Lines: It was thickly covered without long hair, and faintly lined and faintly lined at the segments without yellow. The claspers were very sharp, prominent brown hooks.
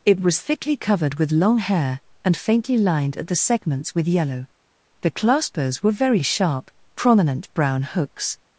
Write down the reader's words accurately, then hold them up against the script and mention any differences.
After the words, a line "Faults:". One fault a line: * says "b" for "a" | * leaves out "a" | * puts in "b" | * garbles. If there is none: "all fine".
It was thickly covered with long hair, and faintly lined at the segments with yellow. The claspers were very sharp, prominent brown hooks.
Faults:
* says "with" for "without"
* leaves out "and faintly lined"
* says "with" for "without"